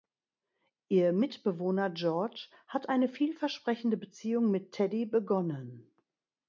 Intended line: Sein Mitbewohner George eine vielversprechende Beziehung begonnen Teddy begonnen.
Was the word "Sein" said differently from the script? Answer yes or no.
yes